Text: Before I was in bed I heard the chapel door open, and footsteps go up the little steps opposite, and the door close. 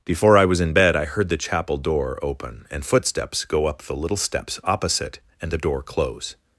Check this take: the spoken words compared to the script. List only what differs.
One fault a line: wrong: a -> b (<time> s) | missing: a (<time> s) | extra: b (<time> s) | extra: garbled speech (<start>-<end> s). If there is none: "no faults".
no faults